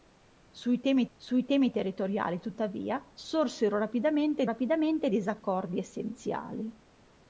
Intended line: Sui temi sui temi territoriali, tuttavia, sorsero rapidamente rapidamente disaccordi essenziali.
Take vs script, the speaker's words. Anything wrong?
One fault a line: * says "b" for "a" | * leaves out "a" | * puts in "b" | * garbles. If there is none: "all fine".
all fine